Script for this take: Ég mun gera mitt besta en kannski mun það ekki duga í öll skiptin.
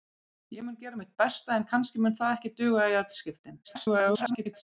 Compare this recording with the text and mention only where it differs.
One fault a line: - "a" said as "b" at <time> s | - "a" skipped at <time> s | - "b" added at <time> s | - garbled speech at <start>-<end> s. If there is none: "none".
- garbled speech at 3.6-4.6 s